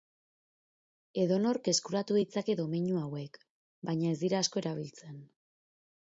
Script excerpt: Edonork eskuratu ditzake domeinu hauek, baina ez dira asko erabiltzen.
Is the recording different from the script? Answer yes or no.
no